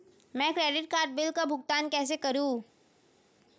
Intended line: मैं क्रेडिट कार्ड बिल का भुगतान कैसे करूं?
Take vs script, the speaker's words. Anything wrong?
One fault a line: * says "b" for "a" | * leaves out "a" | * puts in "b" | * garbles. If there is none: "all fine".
all fine